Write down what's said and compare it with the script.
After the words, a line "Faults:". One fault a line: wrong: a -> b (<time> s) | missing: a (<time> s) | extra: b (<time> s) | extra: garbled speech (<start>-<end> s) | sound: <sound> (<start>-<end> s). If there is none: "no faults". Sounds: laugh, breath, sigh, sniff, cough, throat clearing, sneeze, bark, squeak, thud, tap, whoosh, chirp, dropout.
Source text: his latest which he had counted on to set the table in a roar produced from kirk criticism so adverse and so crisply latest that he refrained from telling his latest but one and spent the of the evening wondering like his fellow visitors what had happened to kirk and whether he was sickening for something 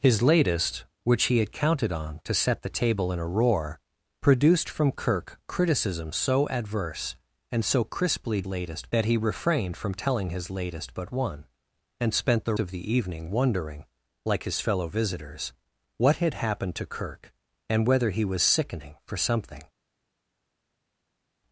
his latest which he had counted on to set the table in a roar produced from kirk criticism so adverse and so crisply latest that he refrained from telling his latest but one and spent the of the evening wondering like his fellow visitors what had happened to kirk and whether he was sickening for something
Faults:
no faults